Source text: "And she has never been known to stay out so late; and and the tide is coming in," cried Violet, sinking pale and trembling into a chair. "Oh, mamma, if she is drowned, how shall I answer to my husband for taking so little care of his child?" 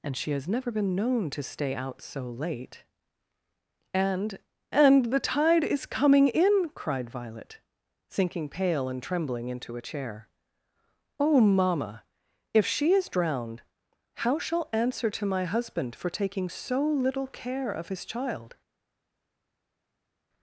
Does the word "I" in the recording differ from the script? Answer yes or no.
yes